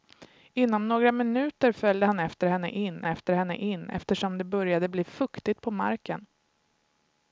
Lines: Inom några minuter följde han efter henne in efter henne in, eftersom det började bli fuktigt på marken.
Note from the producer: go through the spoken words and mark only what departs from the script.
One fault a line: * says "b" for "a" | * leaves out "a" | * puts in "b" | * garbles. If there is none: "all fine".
all fine